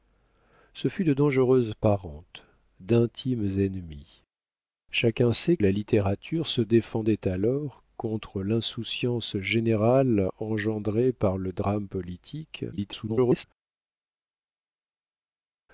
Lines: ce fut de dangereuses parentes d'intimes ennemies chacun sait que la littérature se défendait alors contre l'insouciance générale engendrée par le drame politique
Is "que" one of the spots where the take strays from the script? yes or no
yes